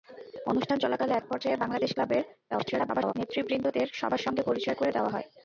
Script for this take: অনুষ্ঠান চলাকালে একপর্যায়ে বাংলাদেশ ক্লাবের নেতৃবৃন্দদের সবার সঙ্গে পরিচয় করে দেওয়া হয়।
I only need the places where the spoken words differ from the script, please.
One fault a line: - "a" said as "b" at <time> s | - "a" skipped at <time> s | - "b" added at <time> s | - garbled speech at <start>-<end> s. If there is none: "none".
- garbled speech at 2.5-3.1 s